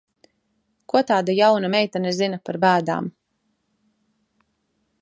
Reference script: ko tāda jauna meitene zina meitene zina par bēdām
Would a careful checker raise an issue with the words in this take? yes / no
yes